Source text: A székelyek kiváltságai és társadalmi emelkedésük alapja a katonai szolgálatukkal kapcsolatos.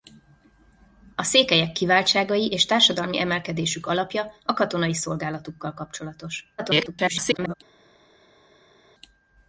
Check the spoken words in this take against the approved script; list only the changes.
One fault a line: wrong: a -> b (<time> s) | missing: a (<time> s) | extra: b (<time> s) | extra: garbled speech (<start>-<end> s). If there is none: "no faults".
extra: garbled speech (6.6-7.5 s)